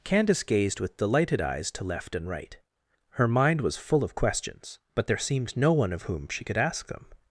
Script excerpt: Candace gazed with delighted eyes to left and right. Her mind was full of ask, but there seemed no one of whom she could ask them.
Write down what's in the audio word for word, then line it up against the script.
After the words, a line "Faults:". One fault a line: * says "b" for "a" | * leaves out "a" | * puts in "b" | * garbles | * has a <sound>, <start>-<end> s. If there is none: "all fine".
Candace gazed with delighted eyes to left and right. Her mind was full of questions, but there seemed no one of whom she could ask them.
Faults:
* says "questions" for "ask"